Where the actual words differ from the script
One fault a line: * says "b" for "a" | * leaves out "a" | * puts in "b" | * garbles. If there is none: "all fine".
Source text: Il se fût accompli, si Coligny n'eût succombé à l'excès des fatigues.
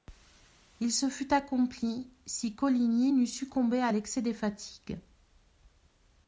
all fine